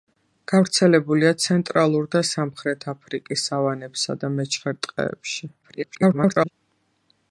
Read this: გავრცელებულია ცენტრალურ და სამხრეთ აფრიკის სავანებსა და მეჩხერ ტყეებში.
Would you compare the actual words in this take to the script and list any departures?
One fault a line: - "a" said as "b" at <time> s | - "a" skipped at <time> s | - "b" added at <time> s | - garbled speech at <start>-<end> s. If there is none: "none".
- garbled speech at 5.6-6.5 s